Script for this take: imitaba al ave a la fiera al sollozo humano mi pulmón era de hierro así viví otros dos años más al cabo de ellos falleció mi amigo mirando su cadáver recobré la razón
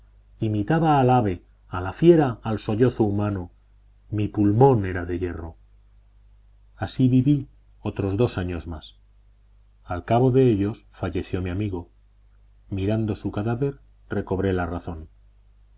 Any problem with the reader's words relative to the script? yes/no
no